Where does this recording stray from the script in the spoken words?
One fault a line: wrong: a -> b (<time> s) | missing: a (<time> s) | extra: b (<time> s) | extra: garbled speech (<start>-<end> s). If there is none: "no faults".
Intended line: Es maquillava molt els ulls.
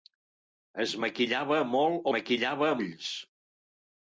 wrong: els -> maquillava (2.2 s)